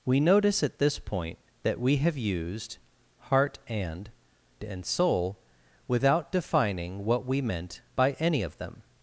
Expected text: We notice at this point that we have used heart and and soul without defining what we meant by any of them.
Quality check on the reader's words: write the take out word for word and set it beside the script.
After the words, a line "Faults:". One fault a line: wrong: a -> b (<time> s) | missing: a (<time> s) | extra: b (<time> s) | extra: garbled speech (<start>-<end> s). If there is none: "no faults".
We notice at this point that we have used heart and and soul without defining what we meant by any of them.
Faults:
no faults